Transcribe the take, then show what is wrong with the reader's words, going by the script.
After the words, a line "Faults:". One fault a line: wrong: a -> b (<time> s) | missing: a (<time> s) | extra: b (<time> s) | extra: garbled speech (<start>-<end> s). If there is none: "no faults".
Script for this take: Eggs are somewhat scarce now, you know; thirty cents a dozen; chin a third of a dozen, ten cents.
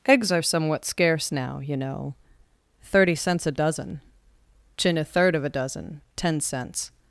Eggs are somewhat scarce now, you know; thirty cents a dozen; chin a third of a dozen, ten cents.
Faults:
no faults